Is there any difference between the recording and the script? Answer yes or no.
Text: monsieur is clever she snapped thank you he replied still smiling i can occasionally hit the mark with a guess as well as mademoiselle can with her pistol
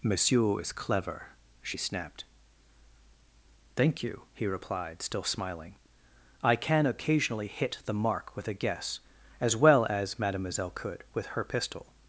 yes